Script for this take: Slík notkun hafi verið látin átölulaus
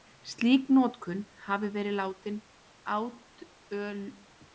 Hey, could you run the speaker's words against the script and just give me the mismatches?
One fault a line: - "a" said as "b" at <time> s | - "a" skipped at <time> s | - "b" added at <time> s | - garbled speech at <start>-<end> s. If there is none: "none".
none